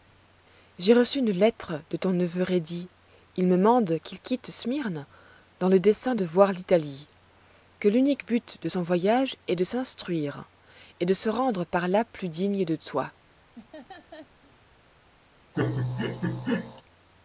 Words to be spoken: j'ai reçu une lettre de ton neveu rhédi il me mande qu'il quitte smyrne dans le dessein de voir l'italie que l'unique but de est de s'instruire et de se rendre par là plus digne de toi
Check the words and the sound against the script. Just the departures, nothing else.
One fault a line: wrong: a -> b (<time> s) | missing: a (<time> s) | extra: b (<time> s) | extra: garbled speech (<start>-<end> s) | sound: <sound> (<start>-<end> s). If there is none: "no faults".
extra: son voyage (8.7 s)
sound: laugh (13.5-14.6 s)
sound: laugh (15.5-16.8 s)